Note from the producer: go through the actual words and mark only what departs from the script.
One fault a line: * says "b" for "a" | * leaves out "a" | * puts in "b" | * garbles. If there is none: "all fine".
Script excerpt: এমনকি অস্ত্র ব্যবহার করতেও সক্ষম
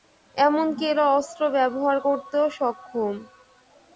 * puts in "এরা"